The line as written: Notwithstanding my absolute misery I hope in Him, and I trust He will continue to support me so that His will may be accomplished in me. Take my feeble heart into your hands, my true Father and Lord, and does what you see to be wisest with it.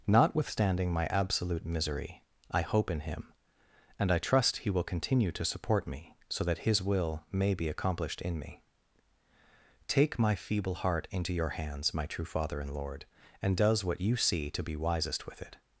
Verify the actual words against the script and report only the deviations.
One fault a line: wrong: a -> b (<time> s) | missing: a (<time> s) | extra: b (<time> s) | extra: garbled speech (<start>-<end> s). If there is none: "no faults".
no faults